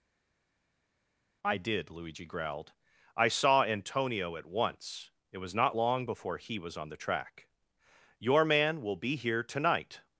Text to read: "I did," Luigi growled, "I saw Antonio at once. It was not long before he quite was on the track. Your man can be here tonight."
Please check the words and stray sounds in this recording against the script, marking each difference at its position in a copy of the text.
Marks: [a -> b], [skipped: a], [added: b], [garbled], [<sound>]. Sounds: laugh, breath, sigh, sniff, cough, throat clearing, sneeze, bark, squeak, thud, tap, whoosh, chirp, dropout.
"I did," Luigi growled, "I saw Antonio at once. It was not long before he [skipped: quite] was on the track. Your man [can -> will] be here tonight."